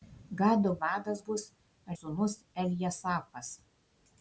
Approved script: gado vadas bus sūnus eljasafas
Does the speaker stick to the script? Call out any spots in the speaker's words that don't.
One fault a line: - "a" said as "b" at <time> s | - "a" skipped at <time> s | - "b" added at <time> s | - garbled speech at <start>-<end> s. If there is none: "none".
none